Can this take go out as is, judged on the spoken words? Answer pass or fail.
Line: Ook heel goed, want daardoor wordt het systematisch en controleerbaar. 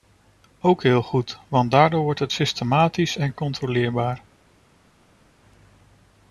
pass